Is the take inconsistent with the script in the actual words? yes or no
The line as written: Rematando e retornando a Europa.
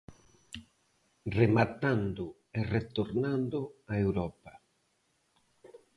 no